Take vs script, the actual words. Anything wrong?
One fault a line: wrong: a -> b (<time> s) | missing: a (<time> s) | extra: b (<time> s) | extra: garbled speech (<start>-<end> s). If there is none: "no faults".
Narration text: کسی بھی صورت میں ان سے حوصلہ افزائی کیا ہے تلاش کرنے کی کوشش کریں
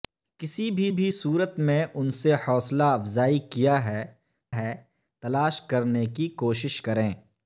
extra: بھی (0.9 s)
extra: ہے (4.6 s)